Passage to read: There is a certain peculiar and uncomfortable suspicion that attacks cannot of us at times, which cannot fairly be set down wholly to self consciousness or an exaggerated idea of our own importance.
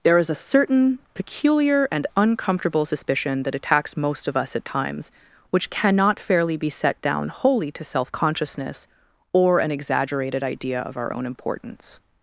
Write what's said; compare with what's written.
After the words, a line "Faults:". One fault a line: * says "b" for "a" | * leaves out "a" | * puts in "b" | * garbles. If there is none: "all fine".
There is a certain peculiar and uncomfortable suspicion that attacks most of us at times, which cannot fairly be set down wholly to self consciousness or an exaggerated idea of our own importance.
Faults:
* says "most" for "cannot"